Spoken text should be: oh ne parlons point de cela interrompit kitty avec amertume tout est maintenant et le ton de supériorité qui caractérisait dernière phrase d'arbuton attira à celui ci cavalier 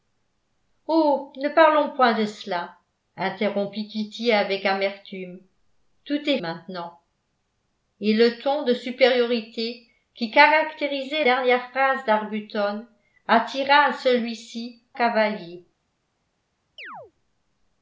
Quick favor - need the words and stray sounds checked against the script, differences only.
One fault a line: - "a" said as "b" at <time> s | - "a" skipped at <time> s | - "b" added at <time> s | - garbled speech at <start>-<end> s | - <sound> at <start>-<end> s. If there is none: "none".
- chirp at 16.8-17.1 s